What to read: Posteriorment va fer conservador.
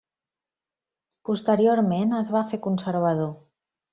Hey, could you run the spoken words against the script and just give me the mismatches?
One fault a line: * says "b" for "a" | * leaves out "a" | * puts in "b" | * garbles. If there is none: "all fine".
* puts in "es"